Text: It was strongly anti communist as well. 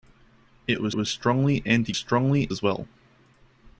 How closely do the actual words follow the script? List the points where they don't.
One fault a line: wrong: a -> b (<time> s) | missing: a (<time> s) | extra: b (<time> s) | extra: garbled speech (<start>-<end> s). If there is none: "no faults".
extra: was (1.0 s)
wrong: communist -> strongly (1.9 s)